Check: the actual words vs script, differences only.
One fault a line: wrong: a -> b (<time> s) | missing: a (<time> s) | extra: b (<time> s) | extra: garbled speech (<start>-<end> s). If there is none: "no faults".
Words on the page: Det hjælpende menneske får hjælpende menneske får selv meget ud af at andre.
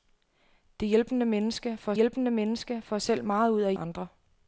no faults